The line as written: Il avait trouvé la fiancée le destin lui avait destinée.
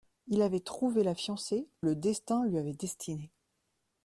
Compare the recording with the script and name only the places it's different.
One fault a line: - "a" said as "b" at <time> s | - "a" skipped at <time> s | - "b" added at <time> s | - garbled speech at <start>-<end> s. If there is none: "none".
none